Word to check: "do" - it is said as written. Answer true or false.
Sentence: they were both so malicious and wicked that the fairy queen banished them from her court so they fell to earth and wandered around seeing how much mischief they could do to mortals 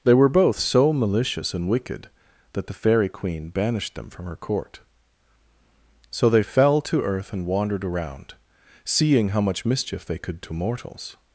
false